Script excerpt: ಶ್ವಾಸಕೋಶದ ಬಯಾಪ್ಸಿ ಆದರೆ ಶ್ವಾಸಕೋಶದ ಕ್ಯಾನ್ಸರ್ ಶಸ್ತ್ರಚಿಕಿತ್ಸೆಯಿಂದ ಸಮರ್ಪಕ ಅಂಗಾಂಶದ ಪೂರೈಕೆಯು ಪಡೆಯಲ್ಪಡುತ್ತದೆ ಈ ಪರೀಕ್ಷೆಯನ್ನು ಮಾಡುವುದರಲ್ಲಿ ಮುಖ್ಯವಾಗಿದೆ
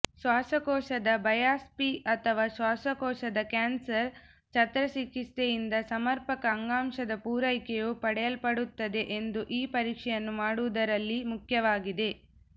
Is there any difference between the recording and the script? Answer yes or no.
yes